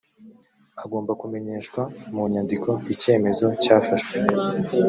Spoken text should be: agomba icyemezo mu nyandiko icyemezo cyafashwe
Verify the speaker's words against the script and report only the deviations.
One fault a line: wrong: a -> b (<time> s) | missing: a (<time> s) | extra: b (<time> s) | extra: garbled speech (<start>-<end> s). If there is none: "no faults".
wrong: icyemezo -> kumenyeshwa (1.2 s)